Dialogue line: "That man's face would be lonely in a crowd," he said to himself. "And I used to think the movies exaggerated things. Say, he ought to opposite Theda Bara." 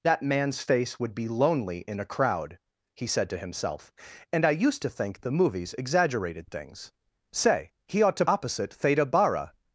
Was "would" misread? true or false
false